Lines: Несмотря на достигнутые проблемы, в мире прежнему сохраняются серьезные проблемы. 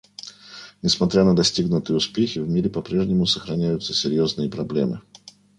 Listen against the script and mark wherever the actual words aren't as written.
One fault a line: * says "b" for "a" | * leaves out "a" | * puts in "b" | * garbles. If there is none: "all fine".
* says "успехи" for "проблемы"
* puts in "по"